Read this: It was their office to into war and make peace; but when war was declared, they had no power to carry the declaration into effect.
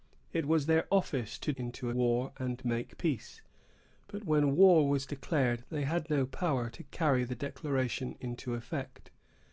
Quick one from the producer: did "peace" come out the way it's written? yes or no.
yes